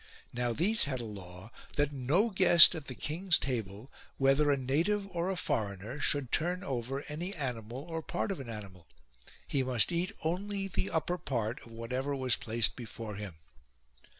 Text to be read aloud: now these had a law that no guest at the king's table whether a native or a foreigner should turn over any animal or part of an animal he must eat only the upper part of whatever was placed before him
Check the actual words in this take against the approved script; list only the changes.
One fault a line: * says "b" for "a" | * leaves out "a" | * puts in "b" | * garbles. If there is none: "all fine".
all fine